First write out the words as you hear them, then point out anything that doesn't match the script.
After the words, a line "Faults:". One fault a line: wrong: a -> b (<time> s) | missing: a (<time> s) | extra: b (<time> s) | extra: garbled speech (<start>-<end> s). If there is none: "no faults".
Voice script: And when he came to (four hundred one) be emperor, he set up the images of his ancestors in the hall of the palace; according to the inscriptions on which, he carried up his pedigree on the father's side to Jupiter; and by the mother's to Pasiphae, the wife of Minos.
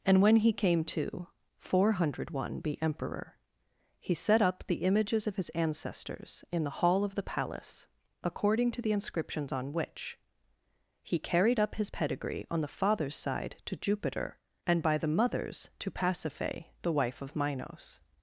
And when he came to (four hundred one) be emperor, he set up the images of his ancestors in the hall of the palace; according to the inscriptions on which, he carried up his pedigree on the father's side to Jupiter; and by the mother's to Pasiphae, the wife of Minos.
Faults:
no faults